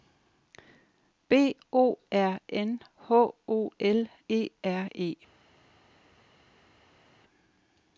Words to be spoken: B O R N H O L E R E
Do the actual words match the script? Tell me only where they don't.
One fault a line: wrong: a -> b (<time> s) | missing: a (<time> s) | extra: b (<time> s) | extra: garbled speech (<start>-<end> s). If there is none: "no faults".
no faults